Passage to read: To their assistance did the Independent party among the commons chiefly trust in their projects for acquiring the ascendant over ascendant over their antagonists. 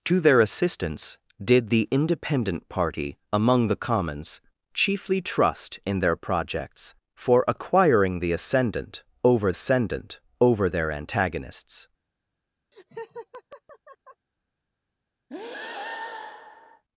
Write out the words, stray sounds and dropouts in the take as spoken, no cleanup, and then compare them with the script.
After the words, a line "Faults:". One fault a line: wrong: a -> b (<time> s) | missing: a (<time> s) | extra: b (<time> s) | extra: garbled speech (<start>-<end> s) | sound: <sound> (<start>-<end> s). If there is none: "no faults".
To their assistance did the Independent party among the commons chiefly trust in their projects for acquiring the ascendant over ascendant over their antagonists.
Faults:
sound: laugh (12.7-14.3 s)
sound: breath (15.3-16.8 s)